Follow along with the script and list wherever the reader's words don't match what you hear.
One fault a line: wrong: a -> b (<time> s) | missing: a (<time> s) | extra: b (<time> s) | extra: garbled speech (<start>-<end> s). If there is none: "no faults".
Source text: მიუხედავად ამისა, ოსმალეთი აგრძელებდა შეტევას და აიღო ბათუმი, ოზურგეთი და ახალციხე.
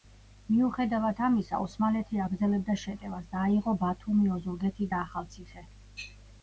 no faults